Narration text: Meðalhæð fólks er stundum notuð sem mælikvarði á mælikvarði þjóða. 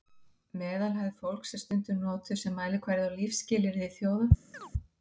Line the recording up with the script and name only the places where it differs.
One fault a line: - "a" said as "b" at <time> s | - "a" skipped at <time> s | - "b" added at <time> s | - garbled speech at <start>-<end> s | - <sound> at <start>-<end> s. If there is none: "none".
- "mælikvarði" said as "lífsskilyrði" at 3.2 s
- chirp at 4.5-4.7 s